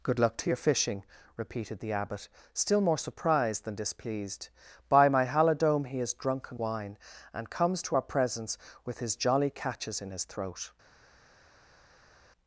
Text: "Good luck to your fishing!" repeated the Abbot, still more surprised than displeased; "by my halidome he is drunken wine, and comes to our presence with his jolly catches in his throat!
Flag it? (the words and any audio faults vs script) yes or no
no